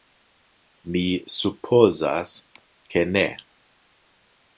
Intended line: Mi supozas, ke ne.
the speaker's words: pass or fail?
pass